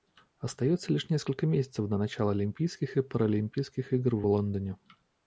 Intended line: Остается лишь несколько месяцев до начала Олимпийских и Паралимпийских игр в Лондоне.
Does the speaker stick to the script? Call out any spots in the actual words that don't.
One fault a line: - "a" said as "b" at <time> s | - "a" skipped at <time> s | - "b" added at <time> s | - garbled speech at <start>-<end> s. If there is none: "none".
none